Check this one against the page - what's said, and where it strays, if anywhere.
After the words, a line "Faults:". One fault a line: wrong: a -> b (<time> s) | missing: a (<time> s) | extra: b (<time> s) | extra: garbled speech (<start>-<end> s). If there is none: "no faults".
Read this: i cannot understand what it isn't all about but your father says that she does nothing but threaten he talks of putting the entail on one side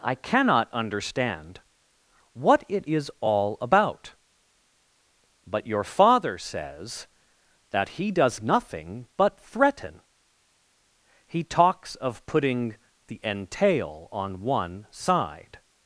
i cannot understand what it is all about but your father says that he does nothing but threaten he talks of putting the entail on one side
Faults:
wrong: isn't -> is (2.8 s)
wrong: she -> he (7.9 s)